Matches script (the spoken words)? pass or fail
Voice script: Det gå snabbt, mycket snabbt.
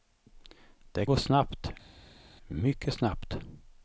pass